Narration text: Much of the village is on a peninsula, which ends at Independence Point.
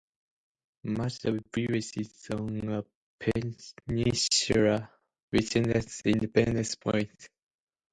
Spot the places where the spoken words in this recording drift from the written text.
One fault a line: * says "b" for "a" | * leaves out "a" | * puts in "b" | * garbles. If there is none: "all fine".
all fine